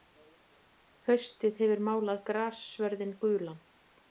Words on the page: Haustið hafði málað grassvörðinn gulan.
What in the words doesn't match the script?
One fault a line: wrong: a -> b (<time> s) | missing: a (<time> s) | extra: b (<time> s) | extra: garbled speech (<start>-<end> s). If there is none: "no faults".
wrong: hafði -> hefur (1.6 s)